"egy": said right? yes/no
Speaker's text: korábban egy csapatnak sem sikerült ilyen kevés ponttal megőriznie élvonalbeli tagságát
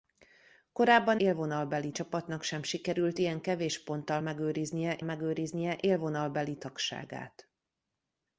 no